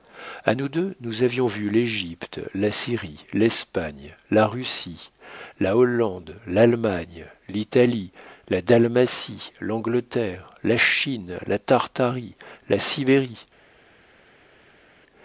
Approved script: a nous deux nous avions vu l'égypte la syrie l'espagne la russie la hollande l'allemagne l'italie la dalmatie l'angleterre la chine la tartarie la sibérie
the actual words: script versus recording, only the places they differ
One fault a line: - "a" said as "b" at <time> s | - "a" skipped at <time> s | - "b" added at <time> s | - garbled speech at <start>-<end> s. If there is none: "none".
none